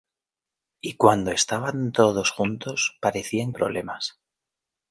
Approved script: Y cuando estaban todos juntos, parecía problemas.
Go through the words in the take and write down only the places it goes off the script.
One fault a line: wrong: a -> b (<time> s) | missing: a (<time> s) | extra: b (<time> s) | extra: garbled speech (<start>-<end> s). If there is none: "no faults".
no faults